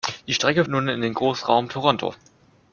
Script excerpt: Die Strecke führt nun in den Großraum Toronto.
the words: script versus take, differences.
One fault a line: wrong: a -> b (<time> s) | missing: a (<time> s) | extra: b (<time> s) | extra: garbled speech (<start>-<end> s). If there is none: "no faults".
missing: führt (0.7 s)